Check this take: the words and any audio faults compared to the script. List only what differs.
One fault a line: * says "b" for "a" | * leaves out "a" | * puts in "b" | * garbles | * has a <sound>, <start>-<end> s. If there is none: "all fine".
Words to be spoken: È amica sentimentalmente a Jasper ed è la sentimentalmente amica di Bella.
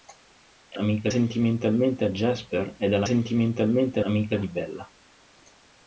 all fine